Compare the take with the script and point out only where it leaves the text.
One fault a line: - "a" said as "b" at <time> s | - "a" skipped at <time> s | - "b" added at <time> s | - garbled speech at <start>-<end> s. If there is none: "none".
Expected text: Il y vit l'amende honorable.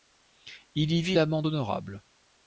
none